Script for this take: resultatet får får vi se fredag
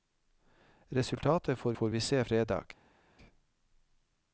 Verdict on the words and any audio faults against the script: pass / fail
pass